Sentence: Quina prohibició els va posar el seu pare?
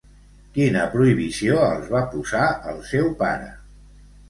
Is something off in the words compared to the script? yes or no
no